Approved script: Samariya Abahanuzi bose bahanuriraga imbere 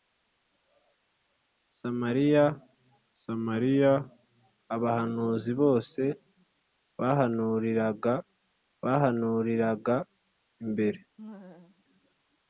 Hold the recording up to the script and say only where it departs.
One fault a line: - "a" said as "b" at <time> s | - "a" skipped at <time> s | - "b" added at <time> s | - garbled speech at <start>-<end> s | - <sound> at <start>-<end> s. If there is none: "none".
- "samariya" added at 3.2 s
- "bahanuriraga" added at 8.8 s
- laugh at 11.2-11.8 s